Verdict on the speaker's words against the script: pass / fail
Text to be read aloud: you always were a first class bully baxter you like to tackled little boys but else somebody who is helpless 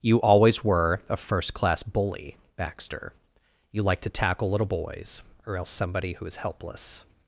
fail